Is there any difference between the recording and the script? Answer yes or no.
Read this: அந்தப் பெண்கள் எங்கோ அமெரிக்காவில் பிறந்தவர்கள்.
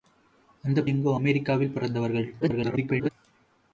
yes